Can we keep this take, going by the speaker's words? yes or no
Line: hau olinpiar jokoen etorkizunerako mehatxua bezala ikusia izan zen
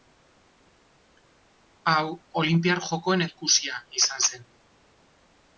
no